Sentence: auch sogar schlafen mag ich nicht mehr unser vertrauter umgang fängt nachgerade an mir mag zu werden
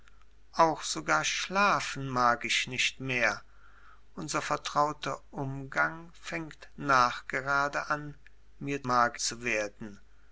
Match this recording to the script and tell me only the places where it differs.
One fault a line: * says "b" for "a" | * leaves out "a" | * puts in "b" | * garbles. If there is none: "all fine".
all fine